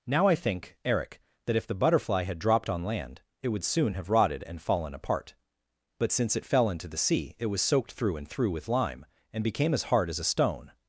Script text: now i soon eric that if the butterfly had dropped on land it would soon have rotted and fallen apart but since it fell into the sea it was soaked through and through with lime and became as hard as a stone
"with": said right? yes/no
yes